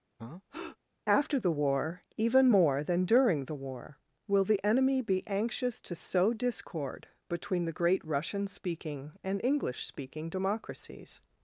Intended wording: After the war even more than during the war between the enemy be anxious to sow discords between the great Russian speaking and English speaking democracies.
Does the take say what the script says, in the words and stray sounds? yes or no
no